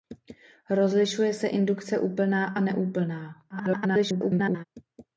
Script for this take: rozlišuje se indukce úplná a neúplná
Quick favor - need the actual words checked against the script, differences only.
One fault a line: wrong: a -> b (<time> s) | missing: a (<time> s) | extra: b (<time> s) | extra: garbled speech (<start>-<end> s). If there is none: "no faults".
extra: garbled speech (3.5-4.6 s)